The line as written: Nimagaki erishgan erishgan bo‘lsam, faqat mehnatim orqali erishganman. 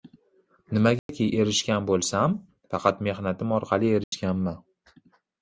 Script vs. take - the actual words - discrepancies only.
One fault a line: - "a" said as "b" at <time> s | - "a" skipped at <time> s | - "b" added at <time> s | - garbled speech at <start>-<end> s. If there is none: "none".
- "erishgan" skipped at 1.9 s